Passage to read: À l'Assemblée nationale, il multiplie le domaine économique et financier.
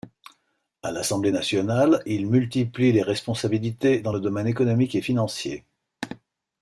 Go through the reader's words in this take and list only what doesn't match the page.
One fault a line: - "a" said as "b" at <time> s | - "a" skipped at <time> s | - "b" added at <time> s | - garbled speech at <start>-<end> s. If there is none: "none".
- "les responsabilités dans" added at 2.9 s